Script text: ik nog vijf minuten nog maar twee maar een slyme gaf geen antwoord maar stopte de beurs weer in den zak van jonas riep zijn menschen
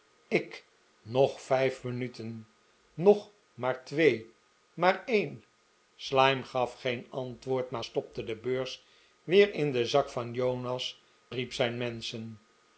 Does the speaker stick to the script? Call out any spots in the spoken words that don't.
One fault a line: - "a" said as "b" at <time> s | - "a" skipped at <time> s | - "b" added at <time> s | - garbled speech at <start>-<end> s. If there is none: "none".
none